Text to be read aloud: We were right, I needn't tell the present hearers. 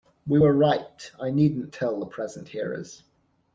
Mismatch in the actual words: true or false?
false